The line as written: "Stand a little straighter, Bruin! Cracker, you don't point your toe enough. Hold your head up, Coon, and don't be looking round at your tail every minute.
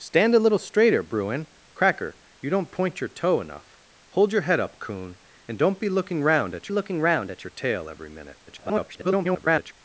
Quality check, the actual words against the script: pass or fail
fail